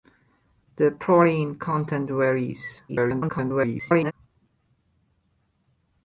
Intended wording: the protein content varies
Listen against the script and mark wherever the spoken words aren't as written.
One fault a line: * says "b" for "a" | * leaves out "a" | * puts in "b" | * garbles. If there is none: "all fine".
* garbles